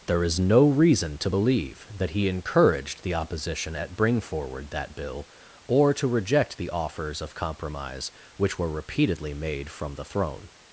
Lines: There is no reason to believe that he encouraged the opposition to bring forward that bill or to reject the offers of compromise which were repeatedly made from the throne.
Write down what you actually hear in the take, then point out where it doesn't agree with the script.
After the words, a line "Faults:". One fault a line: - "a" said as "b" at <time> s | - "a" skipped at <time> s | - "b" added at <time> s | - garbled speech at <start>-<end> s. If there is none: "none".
There is no reason to believe that he encouraged the opposition at bring forward that bill or to reject the offers of compromise which were repeatedly made from the throne.
Faults:
- "to" said as "at" at 3.7 s